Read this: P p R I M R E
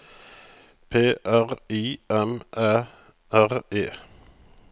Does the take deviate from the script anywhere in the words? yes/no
yes